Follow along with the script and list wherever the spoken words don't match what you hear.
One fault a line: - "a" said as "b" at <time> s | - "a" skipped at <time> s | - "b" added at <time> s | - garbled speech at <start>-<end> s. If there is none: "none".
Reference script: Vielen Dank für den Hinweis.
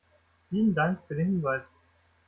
none